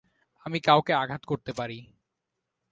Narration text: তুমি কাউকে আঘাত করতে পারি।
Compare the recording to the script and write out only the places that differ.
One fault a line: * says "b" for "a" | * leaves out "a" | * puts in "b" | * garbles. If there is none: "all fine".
* says "আমি" for "তুমি"